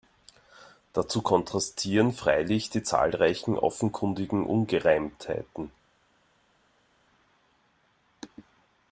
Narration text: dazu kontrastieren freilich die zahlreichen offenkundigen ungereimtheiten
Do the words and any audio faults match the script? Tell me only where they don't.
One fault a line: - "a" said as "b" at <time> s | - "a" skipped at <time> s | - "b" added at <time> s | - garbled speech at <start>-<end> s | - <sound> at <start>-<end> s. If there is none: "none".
none